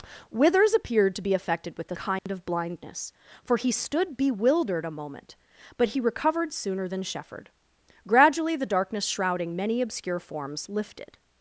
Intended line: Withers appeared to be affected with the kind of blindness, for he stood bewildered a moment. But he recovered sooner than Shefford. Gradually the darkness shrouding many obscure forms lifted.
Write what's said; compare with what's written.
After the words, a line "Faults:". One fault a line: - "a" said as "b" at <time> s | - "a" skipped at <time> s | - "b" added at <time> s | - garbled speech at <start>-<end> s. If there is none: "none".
Withers appeared to be affected with the kind of blindness, for he stood bewildered a moment. But he recovered sooner than Shefford. Gradually the darkness shrouding many obscure forms lifted.
Faults:
none